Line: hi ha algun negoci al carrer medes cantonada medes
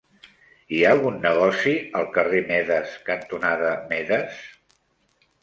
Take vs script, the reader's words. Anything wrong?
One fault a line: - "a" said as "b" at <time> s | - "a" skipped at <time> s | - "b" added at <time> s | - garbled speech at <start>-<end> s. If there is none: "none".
none